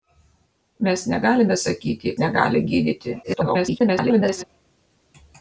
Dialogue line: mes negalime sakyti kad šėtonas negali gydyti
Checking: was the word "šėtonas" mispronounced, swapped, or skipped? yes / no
yes